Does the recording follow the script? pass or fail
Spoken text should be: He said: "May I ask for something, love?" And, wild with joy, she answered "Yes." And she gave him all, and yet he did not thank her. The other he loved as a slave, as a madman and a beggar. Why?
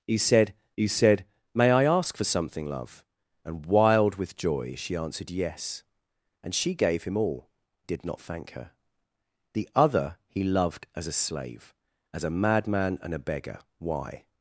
fail